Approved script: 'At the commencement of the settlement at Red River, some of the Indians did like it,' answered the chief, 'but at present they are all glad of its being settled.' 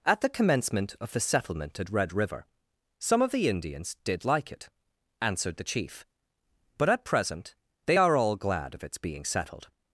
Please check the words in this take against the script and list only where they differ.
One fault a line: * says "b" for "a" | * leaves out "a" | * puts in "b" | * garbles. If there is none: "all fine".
all fine